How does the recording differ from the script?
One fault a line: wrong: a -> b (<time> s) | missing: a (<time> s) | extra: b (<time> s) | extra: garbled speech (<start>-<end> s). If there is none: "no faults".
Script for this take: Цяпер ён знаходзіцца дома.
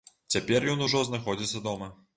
extra: ужо (0.9 s)